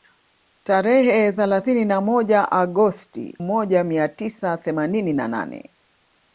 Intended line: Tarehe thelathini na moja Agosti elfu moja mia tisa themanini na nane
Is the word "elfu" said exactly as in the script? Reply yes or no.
no